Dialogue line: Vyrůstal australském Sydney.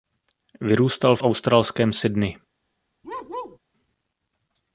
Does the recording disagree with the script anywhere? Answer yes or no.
yes